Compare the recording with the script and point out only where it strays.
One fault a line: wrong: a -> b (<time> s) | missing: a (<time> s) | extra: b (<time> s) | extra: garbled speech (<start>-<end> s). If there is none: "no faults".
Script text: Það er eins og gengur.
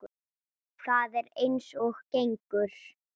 no faults